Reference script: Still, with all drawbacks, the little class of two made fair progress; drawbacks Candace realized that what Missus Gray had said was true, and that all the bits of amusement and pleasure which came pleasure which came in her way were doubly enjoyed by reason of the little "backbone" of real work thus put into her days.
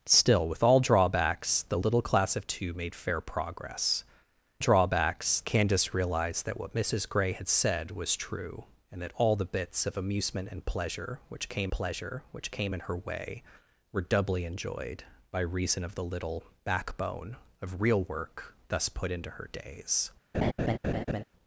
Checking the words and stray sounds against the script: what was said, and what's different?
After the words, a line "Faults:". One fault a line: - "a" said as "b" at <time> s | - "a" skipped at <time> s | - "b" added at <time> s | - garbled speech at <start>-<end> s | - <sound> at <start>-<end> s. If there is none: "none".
Still, with all drawbacks, the little class of two made fair progress; drawbacks Candace realized that what Missus Gray had said was true, and that all the bits of amusement and pleasure which came pleasure which came in her way were doubly enjoyed by reason of the little "backbone" of real work thus put into her days.
Faults:
- laugh at 20.3-21.2 s